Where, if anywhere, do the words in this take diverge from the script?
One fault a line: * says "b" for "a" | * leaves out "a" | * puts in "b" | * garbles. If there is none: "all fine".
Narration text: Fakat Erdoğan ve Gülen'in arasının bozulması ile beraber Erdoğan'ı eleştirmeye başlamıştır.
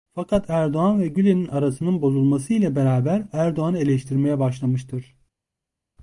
all fine